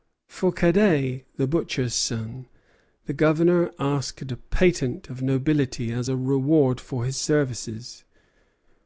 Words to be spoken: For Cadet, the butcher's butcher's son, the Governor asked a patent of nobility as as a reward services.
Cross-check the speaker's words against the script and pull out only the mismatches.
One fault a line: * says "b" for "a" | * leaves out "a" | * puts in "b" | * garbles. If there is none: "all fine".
* leaves out "butcher's"
* leaves out "as"
* puts in "for his"